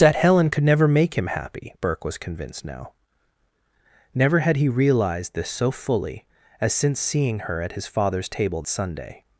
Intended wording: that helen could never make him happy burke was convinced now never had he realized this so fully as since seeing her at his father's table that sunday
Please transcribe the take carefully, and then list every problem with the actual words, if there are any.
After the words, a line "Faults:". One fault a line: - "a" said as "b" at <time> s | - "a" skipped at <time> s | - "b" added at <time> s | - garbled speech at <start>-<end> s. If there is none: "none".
that helen could never make him happy burke was convinced now never had he realized this so fully as since seeing her at his father's table sunday
Faults:
- "that" skipped at 8.6 s